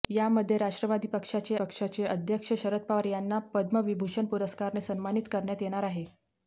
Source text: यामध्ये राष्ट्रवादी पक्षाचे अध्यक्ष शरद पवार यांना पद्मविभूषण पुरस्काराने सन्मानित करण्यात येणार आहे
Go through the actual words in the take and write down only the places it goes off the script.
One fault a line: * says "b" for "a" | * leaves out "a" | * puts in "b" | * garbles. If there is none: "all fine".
* puts in "पक्षाचे"